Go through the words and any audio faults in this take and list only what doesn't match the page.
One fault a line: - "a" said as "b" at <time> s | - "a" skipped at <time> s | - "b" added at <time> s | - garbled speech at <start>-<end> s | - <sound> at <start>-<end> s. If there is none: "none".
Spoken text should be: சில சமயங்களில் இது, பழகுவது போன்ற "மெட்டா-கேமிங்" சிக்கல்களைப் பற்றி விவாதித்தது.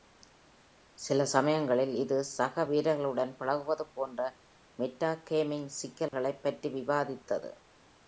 - "சக வீரர்களுடன்" added at 2.3 s
- dropout at 6.1-6.1 s